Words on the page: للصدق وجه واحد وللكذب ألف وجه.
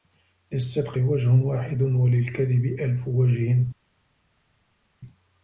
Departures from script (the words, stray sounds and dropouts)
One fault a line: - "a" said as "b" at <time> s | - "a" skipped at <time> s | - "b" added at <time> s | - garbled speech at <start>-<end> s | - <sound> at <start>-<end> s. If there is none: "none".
none